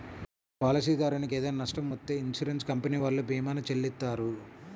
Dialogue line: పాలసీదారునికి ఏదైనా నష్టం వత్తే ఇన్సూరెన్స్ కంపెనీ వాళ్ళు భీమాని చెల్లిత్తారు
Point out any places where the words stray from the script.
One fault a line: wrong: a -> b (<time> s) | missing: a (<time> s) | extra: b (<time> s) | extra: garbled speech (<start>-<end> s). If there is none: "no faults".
no faults